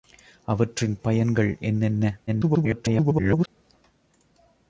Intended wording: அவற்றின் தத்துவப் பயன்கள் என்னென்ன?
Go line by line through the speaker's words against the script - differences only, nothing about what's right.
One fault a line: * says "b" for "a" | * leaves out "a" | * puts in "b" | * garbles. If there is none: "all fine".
* leaves out "தத்துவப்"
* garbles